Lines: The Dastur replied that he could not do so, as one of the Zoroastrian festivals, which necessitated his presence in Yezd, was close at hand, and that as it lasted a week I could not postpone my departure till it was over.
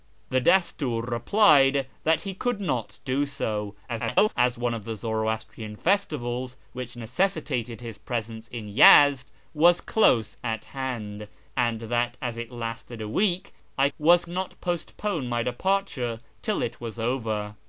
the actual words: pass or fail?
fail